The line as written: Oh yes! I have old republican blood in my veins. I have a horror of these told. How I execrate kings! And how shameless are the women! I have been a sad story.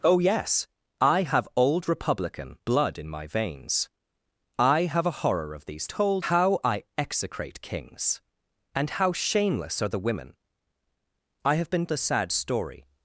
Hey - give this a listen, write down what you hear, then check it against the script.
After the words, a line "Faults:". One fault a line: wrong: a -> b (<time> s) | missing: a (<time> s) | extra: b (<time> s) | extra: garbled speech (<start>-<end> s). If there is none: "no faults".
Oh yes! I have old republican blood in my veins. I have a horror of these told. How I execrate kings! And how shameless are the women! I have been a sad story.
Faults:
no faults